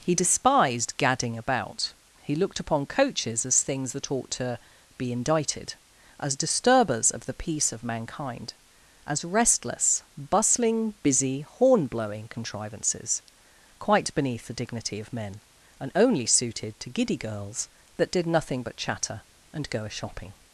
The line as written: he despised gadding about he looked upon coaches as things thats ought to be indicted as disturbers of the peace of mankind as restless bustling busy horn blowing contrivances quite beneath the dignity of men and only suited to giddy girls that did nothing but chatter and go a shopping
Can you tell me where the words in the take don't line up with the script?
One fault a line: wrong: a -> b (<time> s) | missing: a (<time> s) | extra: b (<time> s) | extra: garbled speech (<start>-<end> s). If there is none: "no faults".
wrong: thats -> that (3.9 s)